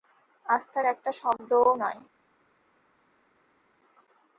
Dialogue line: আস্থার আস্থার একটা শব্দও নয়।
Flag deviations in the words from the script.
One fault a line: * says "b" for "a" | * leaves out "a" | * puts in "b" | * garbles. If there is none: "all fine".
* leaves out "আস্থার"